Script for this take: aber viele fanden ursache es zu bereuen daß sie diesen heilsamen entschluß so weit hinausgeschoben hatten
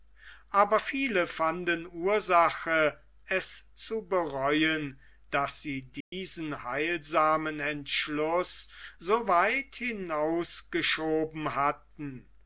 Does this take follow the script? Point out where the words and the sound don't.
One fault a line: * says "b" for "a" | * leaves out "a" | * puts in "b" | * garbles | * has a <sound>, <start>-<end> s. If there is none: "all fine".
* has a dropout, 6.0-6.1 s